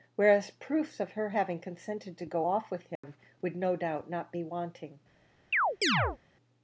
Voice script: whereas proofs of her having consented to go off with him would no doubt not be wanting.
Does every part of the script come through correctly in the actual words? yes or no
yes